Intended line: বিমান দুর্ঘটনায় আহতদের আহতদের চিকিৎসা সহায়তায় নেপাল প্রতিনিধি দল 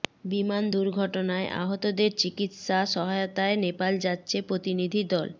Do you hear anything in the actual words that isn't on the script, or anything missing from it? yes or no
yes